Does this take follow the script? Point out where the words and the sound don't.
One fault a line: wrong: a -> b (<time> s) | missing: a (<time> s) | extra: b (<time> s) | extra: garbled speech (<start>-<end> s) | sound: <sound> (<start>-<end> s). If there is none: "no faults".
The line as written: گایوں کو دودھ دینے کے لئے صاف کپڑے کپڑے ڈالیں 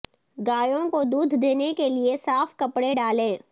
missing: کپڑے (2.9 s)